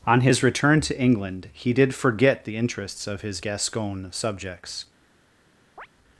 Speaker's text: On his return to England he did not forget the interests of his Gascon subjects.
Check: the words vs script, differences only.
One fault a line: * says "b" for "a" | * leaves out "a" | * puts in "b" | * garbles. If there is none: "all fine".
* leaves out "not"